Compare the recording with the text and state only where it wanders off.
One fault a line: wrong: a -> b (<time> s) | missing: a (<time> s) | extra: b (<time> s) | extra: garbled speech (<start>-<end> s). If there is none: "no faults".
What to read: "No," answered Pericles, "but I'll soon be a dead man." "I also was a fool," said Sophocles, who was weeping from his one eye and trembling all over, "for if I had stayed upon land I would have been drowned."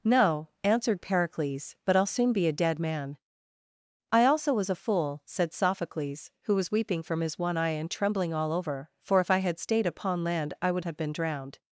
no faults